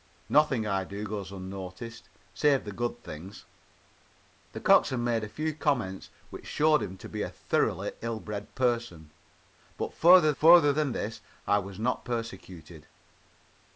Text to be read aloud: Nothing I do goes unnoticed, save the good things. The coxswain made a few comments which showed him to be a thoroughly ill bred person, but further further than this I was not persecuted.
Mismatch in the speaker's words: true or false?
false